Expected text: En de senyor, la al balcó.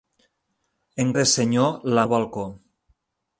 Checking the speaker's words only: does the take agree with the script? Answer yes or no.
yes